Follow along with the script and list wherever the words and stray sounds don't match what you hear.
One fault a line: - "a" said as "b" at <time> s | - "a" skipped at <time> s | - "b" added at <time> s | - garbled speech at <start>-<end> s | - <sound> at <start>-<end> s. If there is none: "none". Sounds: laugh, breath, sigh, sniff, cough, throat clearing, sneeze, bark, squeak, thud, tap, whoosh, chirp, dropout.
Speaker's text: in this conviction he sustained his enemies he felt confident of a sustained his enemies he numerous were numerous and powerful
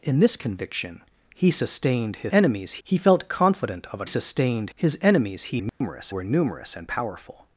- dropout at 5.7-5.8 s